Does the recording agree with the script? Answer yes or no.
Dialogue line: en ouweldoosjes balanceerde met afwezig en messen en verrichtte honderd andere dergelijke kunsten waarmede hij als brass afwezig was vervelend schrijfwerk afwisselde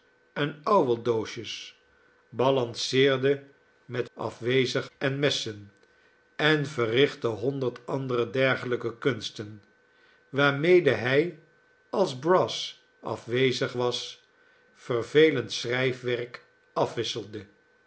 yes